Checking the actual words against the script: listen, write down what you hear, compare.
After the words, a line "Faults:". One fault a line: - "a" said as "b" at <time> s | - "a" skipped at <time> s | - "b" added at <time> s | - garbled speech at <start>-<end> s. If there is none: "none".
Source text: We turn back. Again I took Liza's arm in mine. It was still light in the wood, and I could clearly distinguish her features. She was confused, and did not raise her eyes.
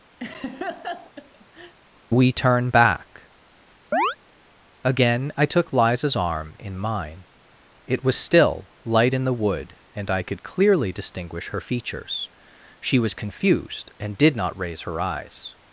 We turn back. Again I took Liza's arm in mine. It was still light in the wood, and I could clearly distinguish her features. She was confused, and did not raise her eyes.
Faults:
none